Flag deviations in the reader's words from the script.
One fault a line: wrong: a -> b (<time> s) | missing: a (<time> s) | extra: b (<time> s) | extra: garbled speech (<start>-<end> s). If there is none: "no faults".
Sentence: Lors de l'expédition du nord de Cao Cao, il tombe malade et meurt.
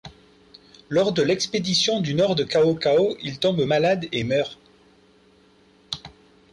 no faults